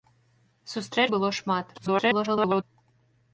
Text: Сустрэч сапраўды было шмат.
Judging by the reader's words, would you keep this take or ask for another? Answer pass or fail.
fail